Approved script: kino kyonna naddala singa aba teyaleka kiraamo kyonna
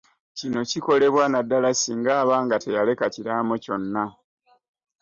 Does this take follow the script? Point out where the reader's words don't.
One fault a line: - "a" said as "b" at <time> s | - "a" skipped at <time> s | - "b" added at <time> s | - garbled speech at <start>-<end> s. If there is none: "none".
- "kyonna" said as "kikolebwa" at 0.7 s
- "nga" added at 2.5 s